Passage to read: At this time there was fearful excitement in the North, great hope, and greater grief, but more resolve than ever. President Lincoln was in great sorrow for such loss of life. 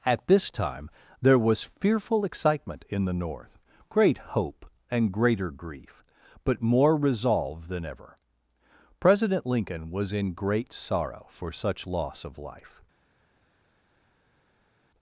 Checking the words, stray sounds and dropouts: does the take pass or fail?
pass